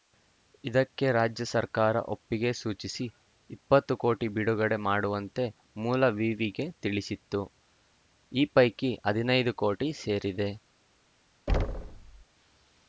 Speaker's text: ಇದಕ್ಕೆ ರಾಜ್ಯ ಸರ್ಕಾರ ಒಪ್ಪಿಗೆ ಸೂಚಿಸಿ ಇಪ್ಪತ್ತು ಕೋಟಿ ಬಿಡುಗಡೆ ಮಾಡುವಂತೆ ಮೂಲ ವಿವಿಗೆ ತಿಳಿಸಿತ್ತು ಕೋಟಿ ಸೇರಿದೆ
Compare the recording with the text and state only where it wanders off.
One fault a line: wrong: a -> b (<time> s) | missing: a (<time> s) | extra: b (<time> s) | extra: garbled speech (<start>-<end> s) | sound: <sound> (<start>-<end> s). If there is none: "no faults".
extra: ಈ ಪೈಕಿ ಹದಿನೈದು (8.3 s)
sound: thud (11.5-12.2 s)